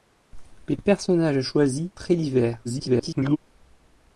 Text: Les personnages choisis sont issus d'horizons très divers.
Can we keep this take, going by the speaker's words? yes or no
no